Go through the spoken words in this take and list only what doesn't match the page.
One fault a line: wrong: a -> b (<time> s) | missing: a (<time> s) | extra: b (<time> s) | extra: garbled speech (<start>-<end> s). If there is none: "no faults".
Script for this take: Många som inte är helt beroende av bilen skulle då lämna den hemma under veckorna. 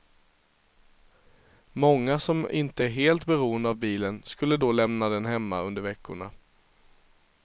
no faults